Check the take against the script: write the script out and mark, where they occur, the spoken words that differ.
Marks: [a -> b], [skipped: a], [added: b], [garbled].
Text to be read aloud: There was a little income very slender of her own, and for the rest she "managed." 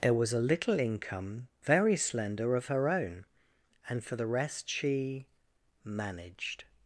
There was a little income very slender of her own, and for the rest she "managed."